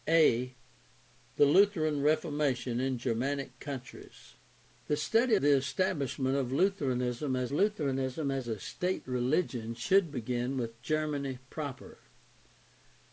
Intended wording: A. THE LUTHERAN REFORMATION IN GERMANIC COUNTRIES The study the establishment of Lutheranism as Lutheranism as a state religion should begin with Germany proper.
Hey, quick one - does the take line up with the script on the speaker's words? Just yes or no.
yes